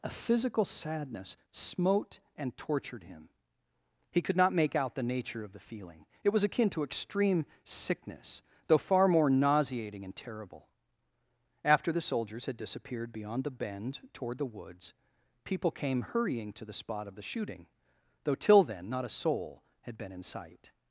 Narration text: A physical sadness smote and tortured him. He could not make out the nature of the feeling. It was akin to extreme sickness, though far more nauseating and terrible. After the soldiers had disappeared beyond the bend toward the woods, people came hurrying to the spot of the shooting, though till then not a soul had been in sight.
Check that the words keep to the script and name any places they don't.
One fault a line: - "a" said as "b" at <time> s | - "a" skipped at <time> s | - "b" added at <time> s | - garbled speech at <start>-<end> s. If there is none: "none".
none